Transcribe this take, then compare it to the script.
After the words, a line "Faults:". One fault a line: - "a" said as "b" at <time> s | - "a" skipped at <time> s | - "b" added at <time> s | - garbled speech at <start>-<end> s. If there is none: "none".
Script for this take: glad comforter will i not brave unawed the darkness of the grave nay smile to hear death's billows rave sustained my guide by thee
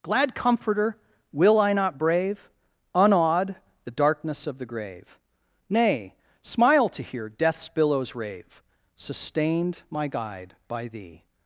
glad comforter will i not brave unawed the darkness of the grave nay smile to hear death's billows rave sustained my guide by thee
Faults:
none